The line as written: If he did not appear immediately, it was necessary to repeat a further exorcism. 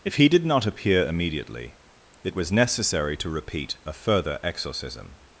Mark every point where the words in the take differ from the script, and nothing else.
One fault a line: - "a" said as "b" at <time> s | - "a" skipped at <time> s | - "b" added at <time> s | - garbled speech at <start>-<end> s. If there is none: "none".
none